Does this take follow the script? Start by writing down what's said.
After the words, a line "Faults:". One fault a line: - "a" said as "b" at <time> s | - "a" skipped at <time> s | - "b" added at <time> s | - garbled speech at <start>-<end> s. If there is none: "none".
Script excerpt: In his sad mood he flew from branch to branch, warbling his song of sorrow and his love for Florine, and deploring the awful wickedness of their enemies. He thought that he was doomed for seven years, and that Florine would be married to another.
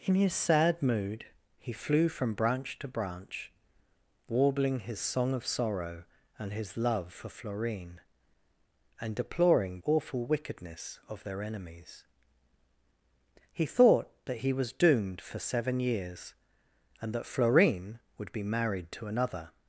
In his sad mood he flew from branch to branch, warbling his song of sorrow and his love for Florine, and deploring awful wickedness of their enemies. He thought that he was doomed for seven years, and that Florine would be married to another.
Faults:
- "the" skipped at 9.8 s